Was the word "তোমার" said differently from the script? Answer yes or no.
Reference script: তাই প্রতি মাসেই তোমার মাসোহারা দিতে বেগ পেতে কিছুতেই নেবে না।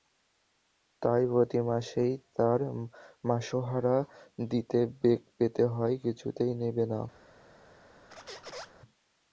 yes